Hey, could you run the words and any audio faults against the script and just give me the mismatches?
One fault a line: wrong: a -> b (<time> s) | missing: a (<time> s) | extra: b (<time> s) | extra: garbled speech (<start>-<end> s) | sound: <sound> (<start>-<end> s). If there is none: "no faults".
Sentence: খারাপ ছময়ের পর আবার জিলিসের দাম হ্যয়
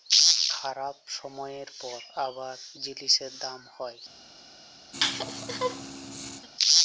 sound: laugh (4.9-6.5 s)